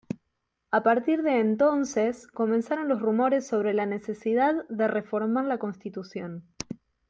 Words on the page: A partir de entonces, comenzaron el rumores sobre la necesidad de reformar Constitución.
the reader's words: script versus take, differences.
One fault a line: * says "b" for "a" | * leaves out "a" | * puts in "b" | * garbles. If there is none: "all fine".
* says "los" for "el"
* puts in "la"